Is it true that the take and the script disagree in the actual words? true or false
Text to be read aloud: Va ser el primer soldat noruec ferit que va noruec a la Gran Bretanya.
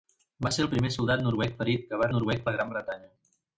false